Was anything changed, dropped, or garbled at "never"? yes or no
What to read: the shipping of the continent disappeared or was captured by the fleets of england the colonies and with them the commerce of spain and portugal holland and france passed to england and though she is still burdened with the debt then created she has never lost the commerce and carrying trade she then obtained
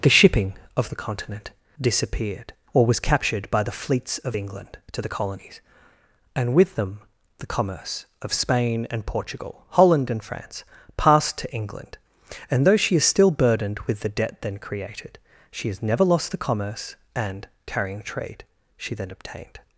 no